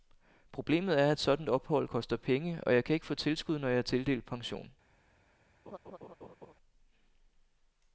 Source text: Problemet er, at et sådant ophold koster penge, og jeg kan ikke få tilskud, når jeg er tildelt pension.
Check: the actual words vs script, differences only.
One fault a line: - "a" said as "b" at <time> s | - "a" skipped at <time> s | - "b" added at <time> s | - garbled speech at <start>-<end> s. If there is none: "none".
none